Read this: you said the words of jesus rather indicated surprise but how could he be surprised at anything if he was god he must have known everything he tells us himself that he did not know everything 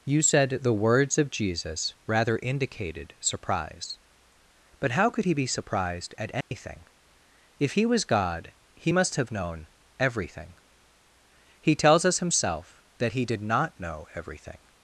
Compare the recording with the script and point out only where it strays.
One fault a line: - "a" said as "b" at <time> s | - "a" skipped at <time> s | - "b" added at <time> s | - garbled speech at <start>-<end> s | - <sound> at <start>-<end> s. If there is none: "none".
- dropout at 6.4-6.5 s